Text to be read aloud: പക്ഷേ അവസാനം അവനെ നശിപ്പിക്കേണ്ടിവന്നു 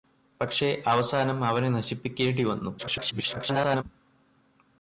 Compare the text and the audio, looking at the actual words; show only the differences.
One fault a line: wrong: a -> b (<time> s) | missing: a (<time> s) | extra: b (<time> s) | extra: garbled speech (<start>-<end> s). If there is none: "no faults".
extra: garbled speech (2.8-3.8 s)